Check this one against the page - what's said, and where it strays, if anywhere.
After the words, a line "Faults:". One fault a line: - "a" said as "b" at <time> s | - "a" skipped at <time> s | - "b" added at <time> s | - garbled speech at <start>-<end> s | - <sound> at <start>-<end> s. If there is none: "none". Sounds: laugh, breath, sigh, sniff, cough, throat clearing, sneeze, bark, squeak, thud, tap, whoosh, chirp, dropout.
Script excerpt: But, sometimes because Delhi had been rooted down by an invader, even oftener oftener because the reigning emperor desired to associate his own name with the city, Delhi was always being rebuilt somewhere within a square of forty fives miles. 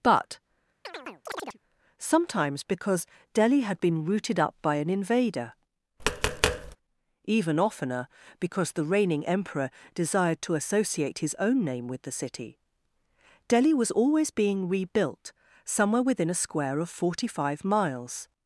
But, sometimes because Delhi had been rooted up by an invader, even oftener because the reigning emperor desired to associate his own name with the city, Delhi was always being rebuilt somewhere within a square of forty five miles.
Faults:
- chirp at 0.8-1.6 s
- "down" said as "up" at 4.4 s
- tap at 6.0-6.8 s
- "oftener" skipped at 8.1 s
- "fives" said as "five" at 17.3 s